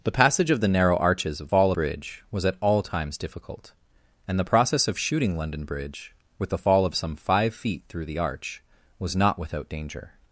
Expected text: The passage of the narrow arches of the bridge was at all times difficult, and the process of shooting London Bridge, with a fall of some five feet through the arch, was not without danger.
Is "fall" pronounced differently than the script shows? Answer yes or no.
no